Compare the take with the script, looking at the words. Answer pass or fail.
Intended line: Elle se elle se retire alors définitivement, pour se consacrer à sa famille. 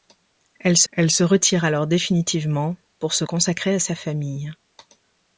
pass